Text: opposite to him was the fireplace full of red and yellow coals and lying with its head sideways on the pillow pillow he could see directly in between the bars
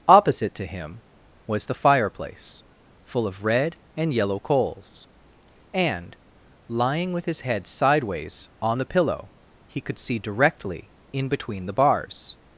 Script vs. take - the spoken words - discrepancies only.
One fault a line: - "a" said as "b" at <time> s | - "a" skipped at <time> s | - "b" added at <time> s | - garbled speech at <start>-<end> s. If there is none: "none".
- "its" said as "his" at 7.2 s
- "pillow" skipped at 9.3 s